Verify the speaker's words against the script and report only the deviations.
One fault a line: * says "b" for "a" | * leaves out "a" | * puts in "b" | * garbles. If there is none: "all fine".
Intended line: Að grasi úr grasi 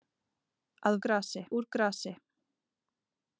all fine